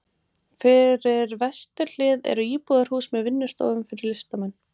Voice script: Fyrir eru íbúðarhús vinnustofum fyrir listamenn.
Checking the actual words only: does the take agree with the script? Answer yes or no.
no